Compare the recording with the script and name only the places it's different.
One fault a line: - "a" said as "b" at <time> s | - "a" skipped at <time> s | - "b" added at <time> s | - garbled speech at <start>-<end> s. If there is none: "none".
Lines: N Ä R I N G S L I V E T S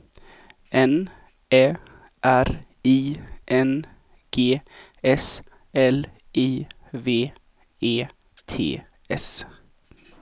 none